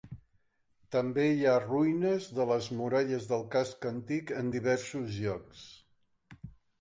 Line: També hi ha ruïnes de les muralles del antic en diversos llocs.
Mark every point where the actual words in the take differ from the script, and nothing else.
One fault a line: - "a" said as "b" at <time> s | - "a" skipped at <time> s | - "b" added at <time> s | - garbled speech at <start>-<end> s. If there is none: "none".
- "casc" added at 3.6 s